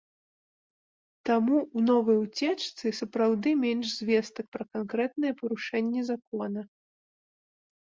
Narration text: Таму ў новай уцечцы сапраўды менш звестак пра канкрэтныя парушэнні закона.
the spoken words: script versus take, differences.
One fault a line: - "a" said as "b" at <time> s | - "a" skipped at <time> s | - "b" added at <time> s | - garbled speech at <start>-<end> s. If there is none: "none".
none